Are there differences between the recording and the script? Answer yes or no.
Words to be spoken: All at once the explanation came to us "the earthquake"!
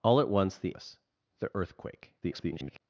yes